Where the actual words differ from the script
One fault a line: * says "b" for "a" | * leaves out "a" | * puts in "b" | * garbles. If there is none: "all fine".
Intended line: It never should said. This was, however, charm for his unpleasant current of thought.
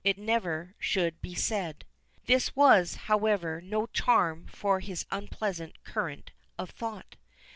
* puts in "be"
* puts in "no"